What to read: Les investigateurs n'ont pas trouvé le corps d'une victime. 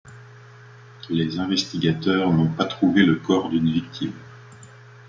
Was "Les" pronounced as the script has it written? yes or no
yes